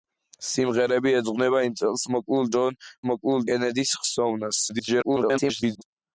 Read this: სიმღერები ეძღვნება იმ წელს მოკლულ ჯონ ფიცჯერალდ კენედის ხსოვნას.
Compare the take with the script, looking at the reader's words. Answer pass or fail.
fail